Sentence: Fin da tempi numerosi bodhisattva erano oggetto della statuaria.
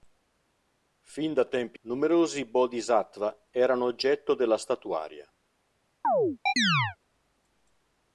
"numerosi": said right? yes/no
yes